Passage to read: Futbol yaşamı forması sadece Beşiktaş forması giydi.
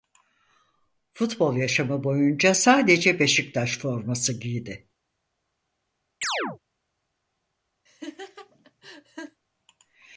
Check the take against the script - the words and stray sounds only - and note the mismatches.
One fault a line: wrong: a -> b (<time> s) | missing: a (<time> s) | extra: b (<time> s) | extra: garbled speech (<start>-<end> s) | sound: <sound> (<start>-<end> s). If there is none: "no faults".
wrong: forması -> boyunca (2.0 s)
sound: chirp (6.2-6.6 s)
sound: laugh (7.9-9.4 s)